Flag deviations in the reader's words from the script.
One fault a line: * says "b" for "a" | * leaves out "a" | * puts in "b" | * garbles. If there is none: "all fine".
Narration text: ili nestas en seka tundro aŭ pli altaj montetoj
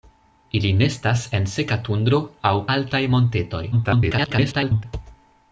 * leaves out "pli"
* garbles